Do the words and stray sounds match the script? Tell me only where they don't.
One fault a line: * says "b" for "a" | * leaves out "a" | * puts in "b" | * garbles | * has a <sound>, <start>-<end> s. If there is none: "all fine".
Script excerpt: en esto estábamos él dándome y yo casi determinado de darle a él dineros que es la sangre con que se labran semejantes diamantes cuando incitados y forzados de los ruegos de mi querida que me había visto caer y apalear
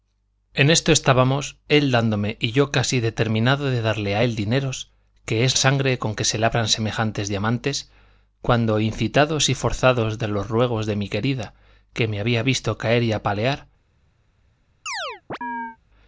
* leaves out "la"
* has a chirp, 14.9-15.8 s